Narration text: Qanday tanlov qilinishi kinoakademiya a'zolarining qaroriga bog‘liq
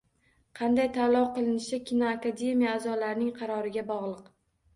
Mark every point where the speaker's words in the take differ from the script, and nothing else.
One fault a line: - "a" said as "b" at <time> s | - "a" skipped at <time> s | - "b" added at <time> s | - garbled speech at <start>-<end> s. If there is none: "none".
none